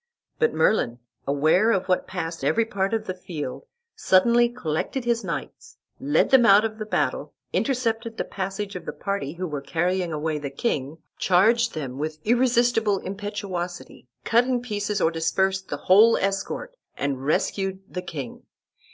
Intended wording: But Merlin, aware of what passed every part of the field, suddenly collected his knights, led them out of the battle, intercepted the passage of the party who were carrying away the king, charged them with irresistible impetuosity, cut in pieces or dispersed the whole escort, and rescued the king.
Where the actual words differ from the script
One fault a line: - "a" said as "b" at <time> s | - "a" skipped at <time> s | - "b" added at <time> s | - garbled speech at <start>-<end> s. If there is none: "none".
none